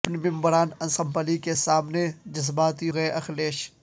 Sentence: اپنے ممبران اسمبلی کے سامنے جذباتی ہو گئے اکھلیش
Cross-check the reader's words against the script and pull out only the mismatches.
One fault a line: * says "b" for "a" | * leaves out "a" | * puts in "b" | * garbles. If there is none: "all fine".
* leaves out "ہو"